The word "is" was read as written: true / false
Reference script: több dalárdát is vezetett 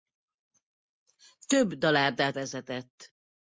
false